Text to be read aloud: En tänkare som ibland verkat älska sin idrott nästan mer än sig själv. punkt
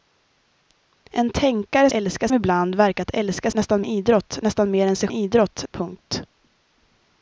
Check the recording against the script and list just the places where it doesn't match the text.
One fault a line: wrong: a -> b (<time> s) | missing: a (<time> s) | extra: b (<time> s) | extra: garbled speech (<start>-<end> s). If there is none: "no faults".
wrong: som -> älska (1.9 s)
wrong: sin -> nästan (3.5 s)
wrong: själv -> idrott (5.1 s)